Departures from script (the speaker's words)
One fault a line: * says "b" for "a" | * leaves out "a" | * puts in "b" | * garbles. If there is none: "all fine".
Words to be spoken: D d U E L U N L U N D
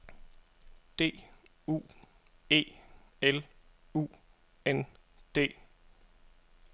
* leaves out "d"
* leaves out "L U N"